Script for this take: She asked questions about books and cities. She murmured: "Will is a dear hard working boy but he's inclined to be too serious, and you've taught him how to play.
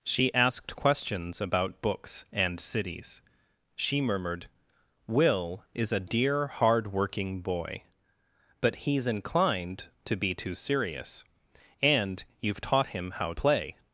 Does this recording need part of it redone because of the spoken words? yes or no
yes